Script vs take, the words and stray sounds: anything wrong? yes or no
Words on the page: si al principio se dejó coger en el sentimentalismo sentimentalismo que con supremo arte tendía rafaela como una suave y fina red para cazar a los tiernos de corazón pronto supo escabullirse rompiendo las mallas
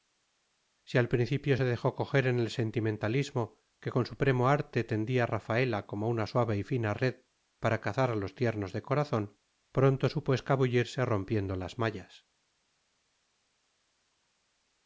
yes